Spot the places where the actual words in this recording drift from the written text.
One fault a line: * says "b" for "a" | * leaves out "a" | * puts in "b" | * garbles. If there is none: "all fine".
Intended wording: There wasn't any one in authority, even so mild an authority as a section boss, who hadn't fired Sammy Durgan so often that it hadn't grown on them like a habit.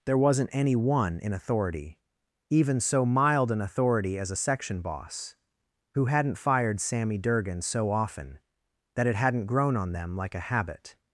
all fine